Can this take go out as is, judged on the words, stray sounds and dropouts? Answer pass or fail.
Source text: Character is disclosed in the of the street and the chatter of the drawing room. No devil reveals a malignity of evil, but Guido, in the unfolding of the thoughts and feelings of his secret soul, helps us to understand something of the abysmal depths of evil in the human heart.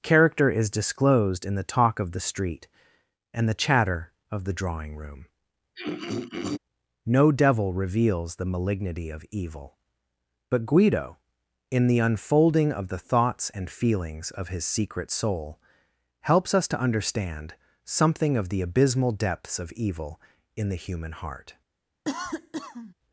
fail